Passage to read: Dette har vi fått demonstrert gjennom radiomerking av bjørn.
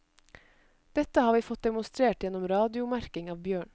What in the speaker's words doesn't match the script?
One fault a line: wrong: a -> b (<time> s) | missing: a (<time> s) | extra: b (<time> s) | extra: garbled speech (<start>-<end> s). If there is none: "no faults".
no faults